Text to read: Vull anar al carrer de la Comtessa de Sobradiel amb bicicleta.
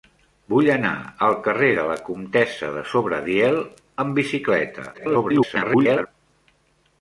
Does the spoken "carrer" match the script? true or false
true